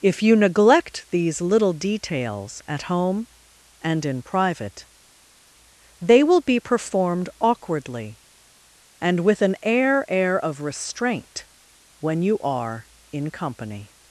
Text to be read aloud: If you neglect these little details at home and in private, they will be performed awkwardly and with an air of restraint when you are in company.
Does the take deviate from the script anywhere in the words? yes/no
yes